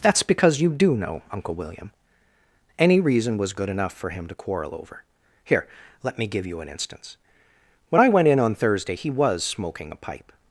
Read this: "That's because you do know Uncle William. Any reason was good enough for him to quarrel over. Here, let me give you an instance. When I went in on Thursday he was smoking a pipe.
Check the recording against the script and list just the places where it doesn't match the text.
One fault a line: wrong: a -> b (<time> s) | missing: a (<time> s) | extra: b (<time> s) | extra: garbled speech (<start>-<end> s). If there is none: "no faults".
no faults